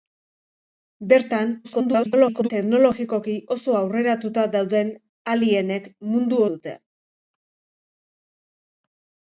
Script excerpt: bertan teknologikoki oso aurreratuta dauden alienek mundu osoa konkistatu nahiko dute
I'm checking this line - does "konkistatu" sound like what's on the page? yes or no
no